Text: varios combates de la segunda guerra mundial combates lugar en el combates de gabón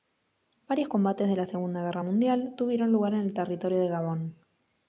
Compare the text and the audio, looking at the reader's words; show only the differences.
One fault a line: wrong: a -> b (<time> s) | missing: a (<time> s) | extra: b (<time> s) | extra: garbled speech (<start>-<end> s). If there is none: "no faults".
wrong: combates -> tuvieron (2.6 s)
wrong: combates -> territorio (3.3 s)